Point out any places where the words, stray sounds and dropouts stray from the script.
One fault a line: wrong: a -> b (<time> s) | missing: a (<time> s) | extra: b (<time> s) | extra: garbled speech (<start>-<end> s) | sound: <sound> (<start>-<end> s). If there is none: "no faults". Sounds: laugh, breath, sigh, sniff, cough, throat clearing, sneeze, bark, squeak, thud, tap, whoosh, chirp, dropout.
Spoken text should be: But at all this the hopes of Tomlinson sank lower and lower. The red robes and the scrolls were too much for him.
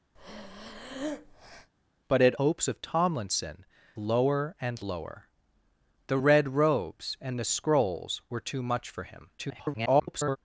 sound: breath (0.2-1.7 s)
missing: all this the (2.3 s)
missing: sank (3.7 s)
extra: garbled speech (9.4-10.4 s)